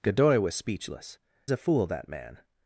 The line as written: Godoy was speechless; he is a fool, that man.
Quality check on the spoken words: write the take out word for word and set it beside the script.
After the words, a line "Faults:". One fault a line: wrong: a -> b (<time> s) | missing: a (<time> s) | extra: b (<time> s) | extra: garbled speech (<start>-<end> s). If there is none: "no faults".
Godoy was speechless; a fool, that man.
Faults:
missing: he is (1.2 s)